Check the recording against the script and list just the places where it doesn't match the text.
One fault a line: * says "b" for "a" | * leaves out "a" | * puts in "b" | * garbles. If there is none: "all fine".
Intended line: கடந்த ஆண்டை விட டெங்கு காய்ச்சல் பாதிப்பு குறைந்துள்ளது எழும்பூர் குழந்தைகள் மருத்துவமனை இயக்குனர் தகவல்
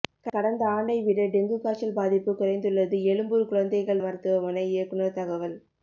all fine